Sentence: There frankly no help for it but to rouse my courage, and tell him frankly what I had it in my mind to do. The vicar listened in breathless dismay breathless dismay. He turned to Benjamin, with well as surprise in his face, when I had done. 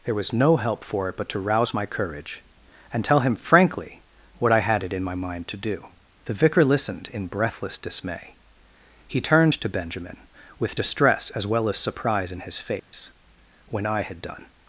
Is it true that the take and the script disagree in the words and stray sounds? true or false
true